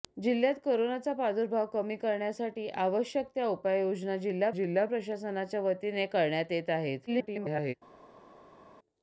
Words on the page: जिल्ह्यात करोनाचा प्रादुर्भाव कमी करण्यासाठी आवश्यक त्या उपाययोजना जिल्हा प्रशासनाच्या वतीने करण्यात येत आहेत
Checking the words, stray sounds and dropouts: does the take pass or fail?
fail